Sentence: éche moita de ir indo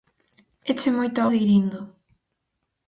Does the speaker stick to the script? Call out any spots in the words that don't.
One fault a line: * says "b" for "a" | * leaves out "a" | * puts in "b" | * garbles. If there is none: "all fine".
all fine